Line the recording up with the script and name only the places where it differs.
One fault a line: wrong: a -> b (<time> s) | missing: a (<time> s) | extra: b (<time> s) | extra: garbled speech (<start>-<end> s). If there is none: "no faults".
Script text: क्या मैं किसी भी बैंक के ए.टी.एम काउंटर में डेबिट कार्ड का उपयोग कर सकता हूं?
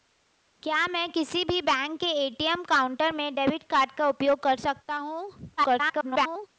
extra: garbled speech (5.6-6.5 s)